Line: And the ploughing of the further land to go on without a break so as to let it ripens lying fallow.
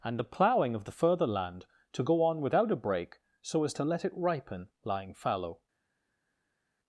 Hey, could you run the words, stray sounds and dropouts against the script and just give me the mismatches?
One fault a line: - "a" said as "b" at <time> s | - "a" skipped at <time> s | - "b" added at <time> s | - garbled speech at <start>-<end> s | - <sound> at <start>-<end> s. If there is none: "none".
- "ripens" said as "ripen" at 4.2 s